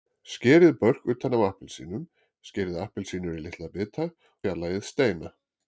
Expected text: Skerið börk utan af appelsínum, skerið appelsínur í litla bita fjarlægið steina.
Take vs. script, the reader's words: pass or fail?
pass